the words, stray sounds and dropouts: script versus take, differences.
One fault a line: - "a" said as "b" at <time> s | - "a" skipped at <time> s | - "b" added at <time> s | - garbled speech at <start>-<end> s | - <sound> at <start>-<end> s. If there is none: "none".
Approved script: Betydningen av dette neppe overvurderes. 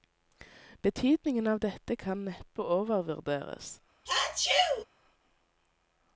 - "kan" added at 1.9 s
- sneeze at 4.1-4.9 s